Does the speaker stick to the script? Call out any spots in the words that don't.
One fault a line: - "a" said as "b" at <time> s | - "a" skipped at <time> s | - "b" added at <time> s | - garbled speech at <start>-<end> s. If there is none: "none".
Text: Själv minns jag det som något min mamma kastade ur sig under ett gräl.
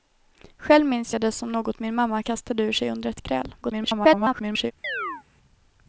- garbled speech at 3.6-4.7 s